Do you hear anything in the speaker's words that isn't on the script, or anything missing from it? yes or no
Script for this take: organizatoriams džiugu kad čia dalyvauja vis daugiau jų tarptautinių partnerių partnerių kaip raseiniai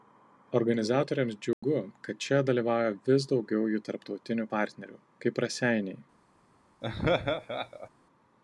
yes